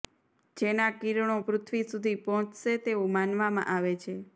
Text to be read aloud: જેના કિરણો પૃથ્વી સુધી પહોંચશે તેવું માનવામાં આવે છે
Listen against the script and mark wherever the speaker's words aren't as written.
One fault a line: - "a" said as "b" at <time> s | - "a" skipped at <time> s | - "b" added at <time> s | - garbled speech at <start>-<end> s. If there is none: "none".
none